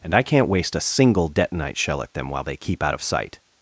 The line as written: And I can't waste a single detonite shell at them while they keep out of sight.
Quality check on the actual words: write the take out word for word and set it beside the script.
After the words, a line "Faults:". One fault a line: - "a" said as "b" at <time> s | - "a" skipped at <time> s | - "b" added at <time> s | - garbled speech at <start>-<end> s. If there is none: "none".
And I can't waste a single detonite shell at them while they keep out of sight.
Faults:
none